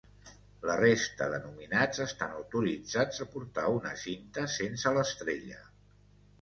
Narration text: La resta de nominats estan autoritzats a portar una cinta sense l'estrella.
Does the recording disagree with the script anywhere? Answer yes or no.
no